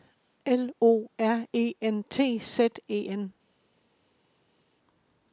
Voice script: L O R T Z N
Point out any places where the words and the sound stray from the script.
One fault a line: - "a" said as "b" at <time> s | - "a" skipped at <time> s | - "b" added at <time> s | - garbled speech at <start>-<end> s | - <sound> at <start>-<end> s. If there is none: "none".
- "E N" added at 1.5 s
- "E" added at 2.9 s